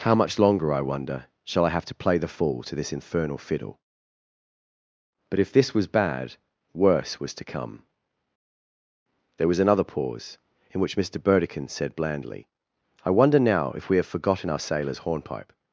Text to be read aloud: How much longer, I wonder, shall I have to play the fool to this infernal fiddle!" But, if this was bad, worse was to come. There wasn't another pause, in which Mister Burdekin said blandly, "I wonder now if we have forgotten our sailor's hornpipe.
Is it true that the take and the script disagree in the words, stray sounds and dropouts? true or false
true